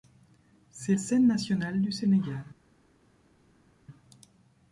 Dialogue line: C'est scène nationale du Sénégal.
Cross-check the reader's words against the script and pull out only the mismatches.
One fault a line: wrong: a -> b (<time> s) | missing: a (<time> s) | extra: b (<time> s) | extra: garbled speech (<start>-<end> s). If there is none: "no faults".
no faults